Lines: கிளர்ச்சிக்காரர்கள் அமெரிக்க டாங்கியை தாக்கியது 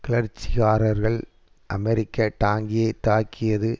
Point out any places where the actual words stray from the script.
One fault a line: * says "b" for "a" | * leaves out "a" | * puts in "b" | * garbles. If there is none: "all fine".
all fine